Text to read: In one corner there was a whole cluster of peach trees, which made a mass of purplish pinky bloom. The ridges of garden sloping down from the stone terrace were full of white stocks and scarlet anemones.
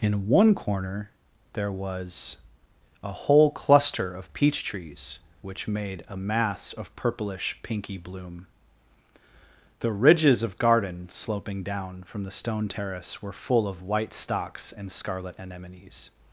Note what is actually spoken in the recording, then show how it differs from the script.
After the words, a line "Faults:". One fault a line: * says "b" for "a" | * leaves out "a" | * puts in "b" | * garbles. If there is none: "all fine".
In one corner there was a whole cluster of peach trees, which made a mass of purplish pinky bloom. The ridges of garden sloping down from the stone terrace were full of white stocks and scarlet anemones.
Faults:
all fine